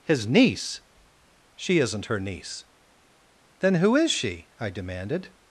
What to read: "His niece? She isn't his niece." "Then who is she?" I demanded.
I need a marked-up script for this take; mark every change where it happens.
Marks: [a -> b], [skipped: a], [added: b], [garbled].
"His niece? She isn't [his -> her] niece." "Then who is she?" I demanded.